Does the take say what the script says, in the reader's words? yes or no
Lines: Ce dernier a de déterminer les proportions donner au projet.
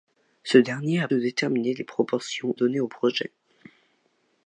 yes